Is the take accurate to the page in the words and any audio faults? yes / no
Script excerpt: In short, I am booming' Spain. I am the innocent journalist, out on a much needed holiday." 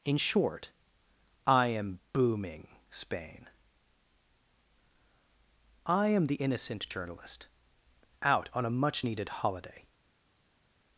yes